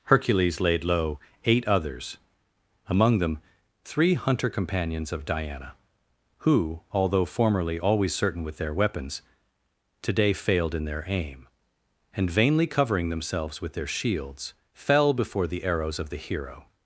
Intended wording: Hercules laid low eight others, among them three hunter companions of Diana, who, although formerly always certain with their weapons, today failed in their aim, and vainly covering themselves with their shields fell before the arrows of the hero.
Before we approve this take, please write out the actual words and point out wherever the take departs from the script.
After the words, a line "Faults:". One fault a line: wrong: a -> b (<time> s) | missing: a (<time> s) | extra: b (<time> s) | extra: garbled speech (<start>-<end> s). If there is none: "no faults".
Hercules laid low eight others, among them three hunter companions of Diana, who, although formerly always certain with their weapons, today failed in their aim, and vainly covering themselves with their shields fell before the arrows of the hero.
Faults:
no faults